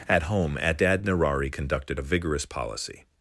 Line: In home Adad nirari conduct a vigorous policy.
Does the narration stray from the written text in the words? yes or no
yes